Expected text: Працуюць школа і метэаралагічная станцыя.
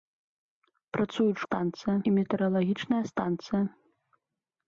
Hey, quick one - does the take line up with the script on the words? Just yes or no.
no